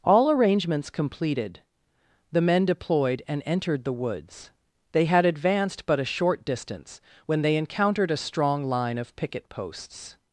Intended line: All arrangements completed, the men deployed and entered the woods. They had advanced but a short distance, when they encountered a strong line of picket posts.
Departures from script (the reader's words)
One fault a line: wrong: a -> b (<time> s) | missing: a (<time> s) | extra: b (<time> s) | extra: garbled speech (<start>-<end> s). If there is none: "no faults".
no faults